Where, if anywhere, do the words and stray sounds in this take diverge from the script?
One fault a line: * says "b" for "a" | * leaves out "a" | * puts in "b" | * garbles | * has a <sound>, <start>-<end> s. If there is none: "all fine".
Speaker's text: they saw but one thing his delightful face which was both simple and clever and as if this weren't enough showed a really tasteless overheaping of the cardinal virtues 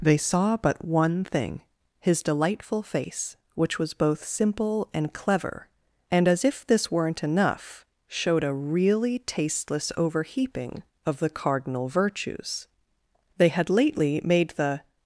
* puts in "they had lately made the"